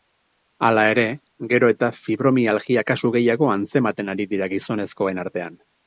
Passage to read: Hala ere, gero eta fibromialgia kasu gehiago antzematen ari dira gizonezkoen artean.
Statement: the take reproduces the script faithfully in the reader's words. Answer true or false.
true